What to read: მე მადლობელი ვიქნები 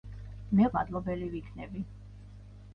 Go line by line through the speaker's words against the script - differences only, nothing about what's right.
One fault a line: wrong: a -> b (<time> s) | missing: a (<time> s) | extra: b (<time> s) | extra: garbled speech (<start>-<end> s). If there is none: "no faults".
no faults